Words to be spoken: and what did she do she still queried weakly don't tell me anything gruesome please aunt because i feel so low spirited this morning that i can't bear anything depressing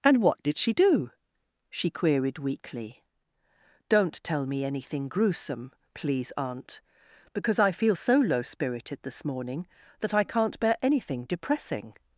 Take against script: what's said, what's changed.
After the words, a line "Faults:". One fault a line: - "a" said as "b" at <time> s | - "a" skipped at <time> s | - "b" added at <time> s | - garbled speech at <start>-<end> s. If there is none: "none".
and what did she do she queried weakly don't tell me anything gruesome please aunt because i feel so low spirited this morning that i can't bear anything depressing
Faults:
- "still" skipped at 1.9 s